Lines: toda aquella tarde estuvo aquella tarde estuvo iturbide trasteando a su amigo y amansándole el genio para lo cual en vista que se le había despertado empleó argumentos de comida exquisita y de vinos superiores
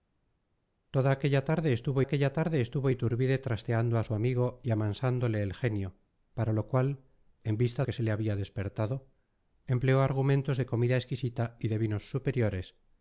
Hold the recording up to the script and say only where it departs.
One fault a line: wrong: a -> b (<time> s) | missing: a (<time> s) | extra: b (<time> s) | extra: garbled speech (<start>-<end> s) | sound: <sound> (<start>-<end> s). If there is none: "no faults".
no faults